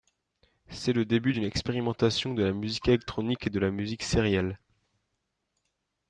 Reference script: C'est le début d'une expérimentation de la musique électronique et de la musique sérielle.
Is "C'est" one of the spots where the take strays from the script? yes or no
no